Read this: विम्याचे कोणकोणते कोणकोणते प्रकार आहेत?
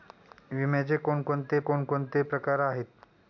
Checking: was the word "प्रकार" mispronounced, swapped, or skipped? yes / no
no